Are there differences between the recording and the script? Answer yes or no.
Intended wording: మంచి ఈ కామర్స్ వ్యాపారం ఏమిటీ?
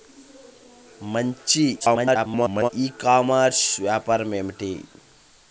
yes